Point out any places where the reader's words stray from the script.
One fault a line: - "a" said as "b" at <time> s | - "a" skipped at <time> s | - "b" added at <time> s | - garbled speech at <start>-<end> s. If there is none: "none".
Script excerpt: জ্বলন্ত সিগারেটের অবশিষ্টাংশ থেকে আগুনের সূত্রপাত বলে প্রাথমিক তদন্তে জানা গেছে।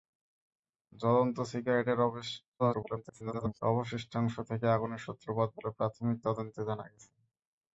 - garbled speech at 2.6-3.6 s